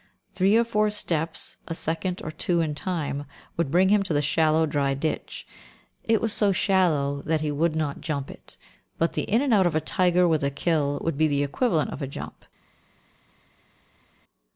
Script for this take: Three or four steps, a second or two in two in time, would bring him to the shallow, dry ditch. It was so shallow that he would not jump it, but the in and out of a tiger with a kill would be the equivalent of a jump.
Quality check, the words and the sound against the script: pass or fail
fail